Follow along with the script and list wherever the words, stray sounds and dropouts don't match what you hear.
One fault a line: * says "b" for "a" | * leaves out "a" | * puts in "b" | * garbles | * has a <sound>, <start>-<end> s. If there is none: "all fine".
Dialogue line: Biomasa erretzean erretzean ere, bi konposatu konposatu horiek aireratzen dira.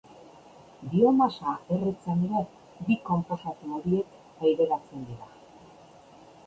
* leaves out "erretzean"
* leaves out "konposatu"